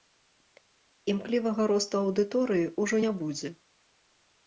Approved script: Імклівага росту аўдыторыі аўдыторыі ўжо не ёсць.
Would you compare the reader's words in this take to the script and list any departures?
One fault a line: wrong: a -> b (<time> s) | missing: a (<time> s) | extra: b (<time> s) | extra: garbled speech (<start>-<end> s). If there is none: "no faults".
missing: аўдыторыі (2.7 s)
wrong: ёсць -> будзе (3.2 s)